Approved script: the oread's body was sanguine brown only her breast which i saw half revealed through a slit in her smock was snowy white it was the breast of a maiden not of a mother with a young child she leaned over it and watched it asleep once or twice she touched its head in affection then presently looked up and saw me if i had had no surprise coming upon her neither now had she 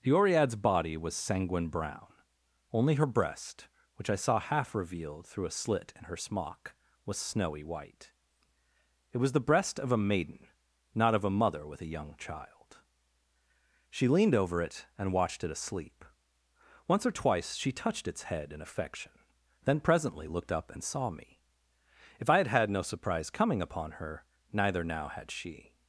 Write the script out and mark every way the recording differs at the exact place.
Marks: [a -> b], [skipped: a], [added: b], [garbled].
the oread's body was sanguine brown only her breast which i saw half revealed through a slit in her smock was snowy white it was the breast of a maiden not of a mother with a young child she leaned over it and watched it asleep once or twice she touched its head in affection then presently looked up and saw me if i had had no surprise coming upon her neither now had she